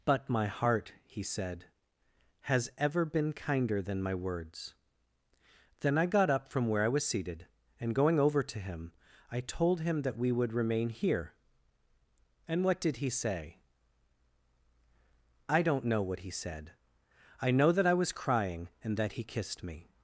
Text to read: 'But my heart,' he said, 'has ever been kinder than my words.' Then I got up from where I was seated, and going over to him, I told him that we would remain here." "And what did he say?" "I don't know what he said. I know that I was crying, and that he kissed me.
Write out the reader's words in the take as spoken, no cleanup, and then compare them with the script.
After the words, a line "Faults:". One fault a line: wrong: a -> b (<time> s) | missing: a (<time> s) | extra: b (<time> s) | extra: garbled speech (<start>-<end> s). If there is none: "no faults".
'But my heart,' he said, 'has ever been kinder than my words.' Then I got up from where I was seated, and going over to him, I told him that we would remain here." "And what did he say?" "I don't know what he said. I know that I was crying, and that he kissed me.
Faults:
no faults